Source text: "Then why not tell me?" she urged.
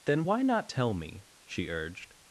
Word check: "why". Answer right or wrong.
right